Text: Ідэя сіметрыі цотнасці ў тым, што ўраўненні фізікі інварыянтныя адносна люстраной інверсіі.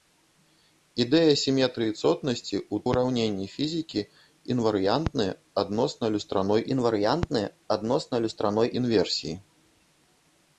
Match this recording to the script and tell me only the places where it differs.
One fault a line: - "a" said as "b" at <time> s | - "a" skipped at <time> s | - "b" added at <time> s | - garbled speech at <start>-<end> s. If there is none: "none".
- "тым што ўраўненні фізікі" said as "ўраўненні фізікі інварыянтныя адносна люстраной" at 2.9 s